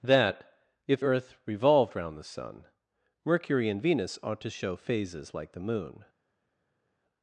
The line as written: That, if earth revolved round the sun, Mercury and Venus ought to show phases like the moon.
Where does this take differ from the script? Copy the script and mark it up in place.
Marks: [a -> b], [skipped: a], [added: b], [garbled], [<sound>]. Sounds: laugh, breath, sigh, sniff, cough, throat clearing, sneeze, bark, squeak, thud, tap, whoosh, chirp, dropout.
That, if earth revolved round the sun, Mercury and Venus ought to show phases like the moon.